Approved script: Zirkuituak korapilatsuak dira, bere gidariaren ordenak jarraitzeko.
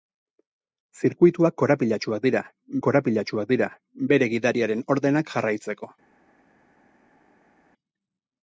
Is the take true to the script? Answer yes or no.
no